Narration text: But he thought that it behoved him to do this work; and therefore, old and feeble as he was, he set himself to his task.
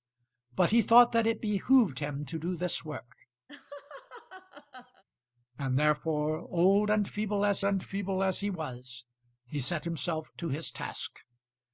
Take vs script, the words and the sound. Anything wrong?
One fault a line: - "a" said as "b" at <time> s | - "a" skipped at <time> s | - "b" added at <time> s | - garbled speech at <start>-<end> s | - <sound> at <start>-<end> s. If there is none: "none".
- laugh at 3.5-5.0 s
- "and feeble as" added at 7.6 s